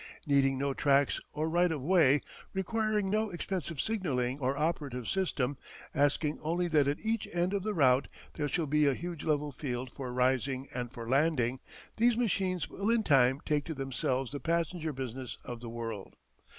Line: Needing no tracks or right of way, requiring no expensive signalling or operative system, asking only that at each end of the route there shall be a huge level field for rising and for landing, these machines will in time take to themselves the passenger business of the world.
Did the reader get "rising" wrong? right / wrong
right